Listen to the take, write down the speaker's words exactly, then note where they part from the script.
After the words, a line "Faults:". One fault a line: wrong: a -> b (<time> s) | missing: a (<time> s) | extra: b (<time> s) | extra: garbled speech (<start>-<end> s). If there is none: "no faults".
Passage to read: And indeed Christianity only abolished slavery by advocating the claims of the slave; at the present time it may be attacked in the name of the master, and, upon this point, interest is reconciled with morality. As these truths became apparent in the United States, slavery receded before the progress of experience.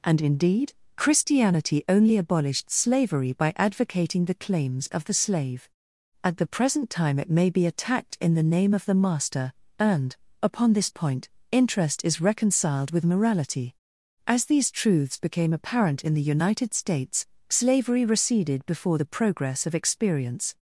And indeed Christianity only abolished slavery by advocating the claims of the slave; at the present time it may be attacked in the name of the master, and, upon this point, interest is reconciled with morality. As these truths became apparent in the United States, slavery receded before the progress of experience.
Faults:
no faults